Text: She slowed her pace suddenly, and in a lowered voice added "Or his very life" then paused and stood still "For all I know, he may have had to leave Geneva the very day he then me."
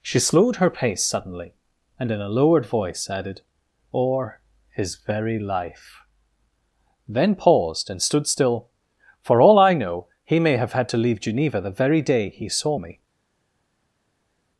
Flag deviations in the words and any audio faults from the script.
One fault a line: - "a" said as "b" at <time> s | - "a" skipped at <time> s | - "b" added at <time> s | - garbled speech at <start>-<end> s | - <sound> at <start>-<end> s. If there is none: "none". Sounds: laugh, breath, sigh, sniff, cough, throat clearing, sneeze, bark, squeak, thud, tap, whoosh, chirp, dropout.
- "then" said as "saw" at 12.5 s